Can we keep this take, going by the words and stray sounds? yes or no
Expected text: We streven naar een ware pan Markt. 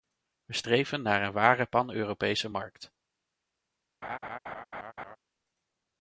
no